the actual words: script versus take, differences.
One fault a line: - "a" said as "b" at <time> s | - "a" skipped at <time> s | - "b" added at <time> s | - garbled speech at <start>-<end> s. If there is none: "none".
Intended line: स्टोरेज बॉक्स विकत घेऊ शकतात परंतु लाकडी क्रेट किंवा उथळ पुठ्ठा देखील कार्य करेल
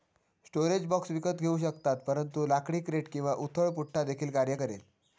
none